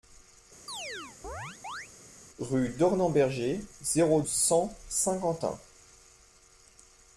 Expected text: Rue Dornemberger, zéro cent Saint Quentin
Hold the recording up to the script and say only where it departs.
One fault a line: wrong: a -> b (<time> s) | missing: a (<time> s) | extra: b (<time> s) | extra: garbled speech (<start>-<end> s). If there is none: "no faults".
no faults